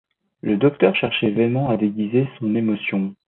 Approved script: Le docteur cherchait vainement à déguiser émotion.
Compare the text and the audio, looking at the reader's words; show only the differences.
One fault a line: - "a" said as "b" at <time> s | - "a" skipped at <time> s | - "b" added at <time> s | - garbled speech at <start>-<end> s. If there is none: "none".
- "son" added at 2.4 s